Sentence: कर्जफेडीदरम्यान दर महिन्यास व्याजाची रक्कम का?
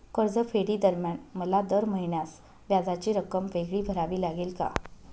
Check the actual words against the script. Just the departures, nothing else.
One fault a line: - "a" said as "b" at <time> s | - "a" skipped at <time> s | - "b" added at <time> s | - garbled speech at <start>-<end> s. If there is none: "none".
- "मला" added at 1.4 s
- "वेगळी भरावी लागेल" added at 3.5 s